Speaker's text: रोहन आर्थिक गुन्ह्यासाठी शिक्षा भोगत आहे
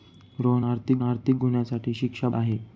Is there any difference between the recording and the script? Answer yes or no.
yes